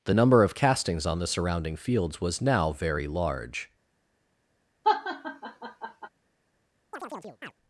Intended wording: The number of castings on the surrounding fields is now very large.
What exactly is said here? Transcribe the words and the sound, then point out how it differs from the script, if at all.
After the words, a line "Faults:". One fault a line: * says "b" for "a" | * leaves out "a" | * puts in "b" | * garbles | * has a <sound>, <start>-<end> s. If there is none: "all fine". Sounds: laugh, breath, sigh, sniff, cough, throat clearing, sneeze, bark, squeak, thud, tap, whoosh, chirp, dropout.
The number of castings on the surrounding fields was now very large.
Faults:
* says "was" for "is"
* has a laugh, 4.8-6.1 s
* has a chirp, 6.9-7.5 s